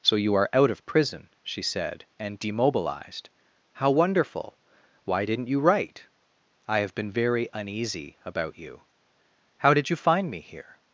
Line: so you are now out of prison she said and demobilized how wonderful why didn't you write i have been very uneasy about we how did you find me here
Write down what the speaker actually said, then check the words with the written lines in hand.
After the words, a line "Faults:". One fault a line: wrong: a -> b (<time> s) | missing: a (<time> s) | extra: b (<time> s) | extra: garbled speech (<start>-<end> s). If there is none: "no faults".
so you are out of prison she said and demobilized how wonderful why didn't you write i have been very uneasy about you how did you find me here
Faults:
missing: now (0.5 s)
wrong: we -> you (8.6 s)